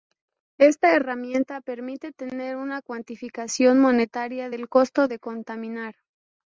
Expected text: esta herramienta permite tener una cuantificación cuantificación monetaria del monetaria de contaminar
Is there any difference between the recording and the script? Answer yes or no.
yes